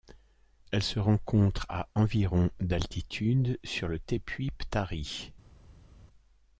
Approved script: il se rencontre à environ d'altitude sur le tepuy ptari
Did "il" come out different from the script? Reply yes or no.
yes